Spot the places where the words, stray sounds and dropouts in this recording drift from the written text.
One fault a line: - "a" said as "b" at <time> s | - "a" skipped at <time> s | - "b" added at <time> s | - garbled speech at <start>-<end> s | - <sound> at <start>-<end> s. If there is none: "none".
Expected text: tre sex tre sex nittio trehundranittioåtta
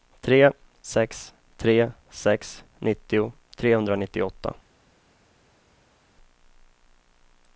none